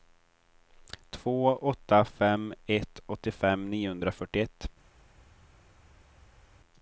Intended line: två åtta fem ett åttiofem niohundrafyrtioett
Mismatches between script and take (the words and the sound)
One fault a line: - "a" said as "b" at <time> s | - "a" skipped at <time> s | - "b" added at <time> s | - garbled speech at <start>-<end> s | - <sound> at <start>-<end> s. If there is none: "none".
none